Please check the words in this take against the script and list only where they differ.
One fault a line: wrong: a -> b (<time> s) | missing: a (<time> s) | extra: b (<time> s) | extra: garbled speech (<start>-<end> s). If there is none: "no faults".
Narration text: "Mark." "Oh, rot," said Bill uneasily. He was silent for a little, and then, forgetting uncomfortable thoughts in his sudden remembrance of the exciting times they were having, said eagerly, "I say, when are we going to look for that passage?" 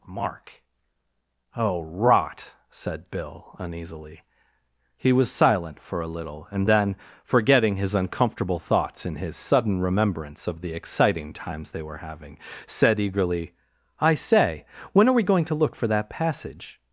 extra: his (7.7 s)